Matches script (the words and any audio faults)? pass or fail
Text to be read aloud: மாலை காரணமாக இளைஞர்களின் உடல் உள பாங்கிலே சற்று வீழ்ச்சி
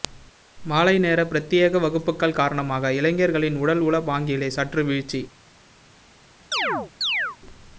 fail